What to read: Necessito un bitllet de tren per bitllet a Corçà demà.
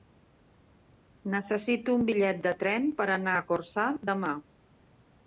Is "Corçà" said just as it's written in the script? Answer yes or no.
yes